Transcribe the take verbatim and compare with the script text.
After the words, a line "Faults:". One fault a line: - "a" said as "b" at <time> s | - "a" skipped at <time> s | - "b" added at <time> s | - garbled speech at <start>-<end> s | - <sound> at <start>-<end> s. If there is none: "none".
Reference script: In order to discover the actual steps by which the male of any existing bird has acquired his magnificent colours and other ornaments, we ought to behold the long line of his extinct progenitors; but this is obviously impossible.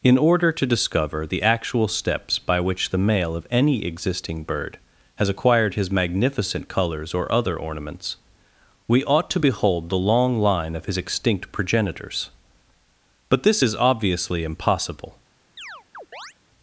In order to discover the actual steps by which the male of any existing bird has acquired his magnificent colours or other ornaments, we ought to behold the long line of his extinct progenitors; but this is obviously impossible.
Faults:
- "and" said as "or" at 7.1 s
- chirp at 15.6-16.3 s